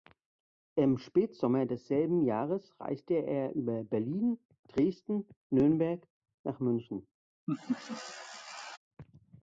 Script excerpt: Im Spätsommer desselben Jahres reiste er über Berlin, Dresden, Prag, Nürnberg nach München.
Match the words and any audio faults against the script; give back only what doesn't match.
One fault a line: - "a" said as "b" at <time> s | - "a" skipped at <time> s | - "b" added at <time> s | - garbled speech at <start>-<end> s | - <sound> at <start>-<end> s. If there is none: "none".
- "Prag" skipped at 5.3 s
- laugh at 7.5-8.8 s